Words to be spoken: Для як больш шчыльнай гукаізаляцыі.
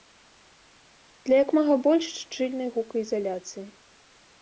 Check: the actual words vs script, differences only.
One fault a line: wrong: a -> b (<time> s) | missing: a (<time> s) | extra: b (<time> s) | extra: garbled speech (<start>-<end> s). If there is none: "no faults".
extra: мага (1.6 s)